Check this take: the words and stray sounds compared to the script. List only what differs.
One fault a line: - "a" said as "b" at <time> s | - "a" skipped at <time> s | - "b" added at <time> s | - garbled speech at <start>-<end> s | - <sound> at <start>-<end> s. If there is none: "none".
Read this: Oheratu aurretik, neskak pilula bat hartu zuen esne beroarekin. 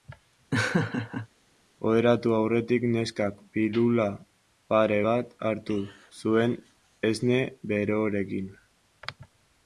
- laugh at 0.5-1.3 s
- "pare" added at 4.7 s